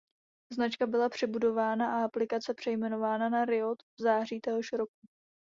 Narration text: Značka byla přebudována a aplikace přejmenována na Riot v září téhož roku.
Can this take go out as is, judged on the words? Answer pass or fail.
pass